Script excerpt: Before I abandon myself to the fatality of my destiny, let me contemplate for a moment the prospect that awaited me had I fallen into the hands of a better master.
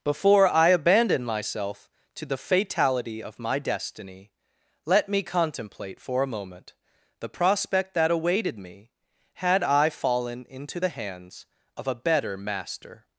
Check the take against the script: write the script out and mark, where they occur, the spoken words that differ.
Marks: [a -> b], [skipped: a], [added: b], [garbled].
Before I abandon myself to the fatality of my destiny, let me contemplate for a moment the prospect that awaited me had I fallen into the hands of a better master.